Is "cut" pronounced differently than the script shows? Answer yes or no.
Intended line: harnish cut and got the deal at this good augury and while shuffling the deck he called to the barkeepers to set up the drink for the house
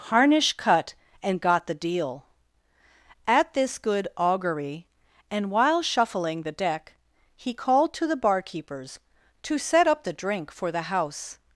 no